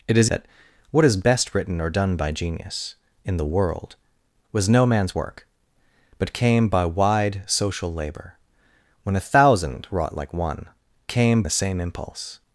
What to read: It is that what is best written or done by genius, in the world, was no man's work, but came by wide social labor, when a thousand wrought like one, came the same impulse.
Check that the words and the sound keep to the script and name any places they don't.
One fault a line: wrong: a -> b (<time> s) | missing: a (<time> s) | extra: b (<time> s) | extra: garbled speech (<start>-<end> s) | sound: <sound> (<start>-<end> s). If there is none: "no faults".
no faults